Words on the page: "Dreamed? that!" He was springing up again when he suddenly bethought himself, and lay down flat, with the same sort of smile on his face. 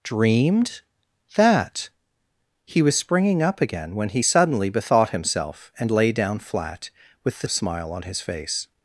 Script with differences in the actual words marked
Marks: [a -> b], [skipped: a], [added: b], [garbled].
"Dreamed? that!" He was springing up again when he suddenly bethought himself, and lay down flat, with the [skipped: same sort] of smile on his face.